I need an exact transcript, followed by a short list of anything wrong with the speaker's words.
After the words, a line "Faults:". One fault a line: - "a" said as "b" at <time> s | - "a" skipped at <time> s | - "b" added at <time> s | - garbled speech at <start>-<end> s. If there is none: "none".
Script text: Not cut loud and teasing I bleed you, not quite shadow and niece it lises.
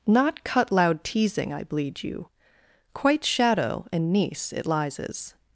Not cut loud teasing I bleed you, quite shadow and niece it lises.
Faults:
- "and" skipped at 1.0 s
- "not" skipped at 2.3 s